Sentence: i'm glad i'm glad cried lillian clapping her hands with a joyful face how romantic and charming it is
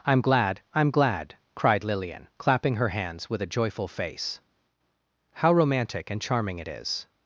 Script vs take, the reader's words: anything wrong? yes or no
no